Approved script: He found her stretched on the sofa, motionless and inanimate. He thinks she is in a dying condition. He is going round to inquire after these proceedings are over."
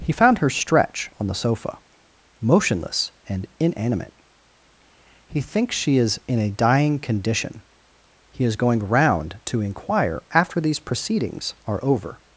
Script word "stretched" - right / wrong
wrong